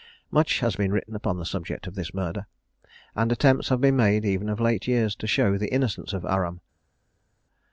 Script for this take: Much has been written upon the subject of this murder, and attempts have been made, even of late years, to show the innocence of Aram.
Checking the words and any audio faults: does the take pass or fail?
pass